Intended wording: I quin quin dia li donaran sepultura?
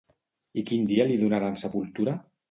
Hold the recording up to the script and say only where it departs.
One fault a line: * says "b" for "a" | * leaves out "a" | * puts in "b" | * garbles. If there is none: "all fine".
* leaves out "quin"